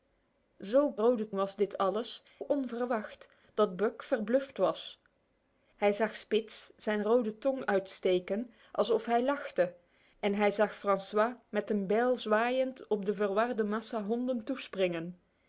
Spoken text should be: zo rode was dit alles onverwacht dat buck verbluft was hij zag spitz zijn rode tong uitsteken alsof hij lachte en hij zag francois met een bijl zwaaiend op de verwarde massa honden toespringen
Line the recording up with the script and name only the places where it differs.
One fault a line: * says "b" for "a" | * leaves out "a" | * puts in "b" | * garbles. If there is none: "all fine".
all fine